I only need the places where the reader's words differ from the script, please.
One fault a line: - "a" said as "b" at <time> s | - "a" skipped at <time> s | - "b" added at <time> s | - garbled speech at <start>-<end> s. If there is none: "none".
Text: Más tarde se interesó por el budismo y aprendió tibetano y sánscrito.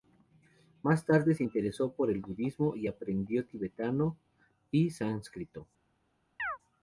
none